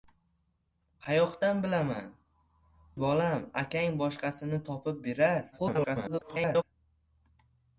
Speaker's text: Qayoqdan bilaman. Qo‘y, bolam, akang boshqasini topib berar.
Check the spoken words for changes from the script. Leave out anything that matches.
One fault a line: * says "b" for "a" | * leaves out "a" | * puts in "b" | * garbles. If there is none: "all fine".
* leaves out "Qo‘y"
* garbles